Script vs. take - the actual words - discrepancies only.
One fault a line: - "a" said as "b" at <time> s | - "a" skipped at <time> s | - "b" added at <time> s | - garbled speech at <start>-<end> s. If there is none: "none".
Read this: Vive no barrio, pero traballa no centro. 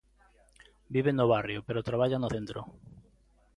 none